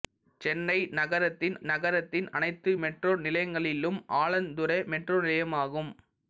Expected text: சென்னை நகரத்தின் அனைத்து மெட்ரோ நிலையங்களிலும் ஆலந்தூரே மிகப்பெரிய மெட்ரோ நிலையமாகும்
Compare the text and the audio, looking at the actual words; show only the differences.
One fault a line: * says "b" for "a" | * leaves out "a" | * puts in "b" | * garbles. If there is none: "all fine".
* puts in "நகரத்தின்"
* leaves out "மிகப்பெரிய"